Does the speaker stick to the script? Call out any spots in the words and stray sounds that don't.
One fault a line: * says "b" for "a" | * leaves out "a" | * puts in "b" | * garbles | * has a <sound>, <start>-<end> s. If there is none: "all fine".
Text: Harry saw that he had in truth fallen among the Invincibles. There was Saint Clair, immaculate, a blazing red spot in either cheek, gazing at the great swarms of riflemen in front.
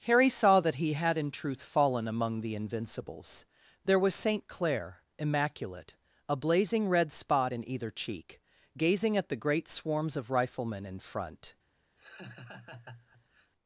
* has a laugh, 12.0-13.5 s